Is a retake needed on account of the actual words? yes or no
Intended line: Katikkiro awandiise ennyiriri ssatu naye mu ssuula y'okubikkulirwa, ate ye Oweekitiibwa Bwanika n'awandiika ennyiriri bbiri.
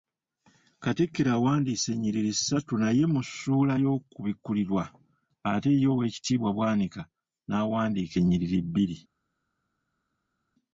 no